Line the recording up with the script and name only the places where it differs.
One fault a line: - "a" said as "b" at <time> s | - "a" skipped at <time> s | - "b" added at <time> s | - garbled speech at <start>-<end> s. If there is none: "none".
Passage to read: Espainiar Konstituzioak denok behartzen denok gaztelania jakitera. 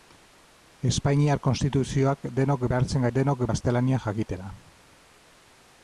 none